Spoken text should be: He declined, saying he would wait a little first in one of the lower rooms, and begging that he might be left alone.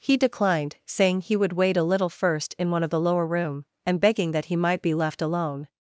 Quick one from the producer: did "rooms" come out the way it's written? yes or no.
no